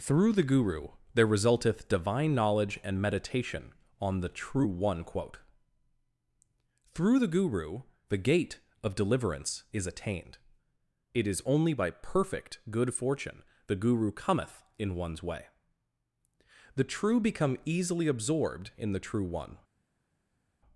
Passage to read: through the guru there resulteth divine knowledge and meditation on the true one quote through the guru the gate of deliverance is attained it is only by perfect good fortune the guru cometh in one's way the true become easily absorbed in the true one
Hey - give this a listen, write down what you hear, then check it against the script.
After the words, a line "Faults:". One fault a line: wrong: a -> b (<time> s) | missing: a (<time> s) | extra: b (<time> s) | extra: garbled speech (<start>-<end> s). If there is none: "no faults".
through the guru there resulteth divine knowledge and meditation on the true one quote through the guru the gate of deliverance is attained it is only by perfect good fortune the guru cometh in one's way the true become easily absorbed in the true one
Faults:
no faults